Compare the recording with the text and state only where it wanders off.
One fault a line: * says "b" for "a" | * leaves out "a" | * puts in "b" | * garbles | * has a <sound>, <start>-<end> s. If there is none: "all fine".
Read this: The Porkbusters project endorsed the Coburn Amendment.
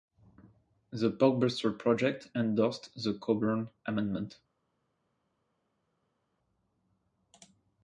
all fine